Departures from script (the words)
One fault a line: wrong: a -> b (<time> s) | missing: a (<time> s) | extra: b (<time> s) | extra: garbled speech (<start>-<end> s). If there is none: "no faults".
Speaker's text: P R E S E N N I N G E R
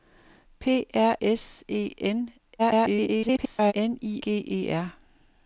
missing: E (1.1 s)
extra: garbled speech (2.6-3.7 s)
missing: N (4.2 s)